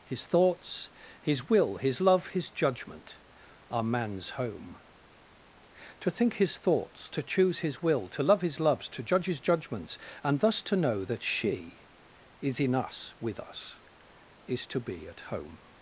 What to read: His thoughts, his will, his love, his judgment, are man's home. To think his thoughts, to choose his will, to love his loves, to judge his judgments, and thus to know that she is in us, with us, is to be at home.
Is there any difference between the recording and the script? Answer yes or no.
no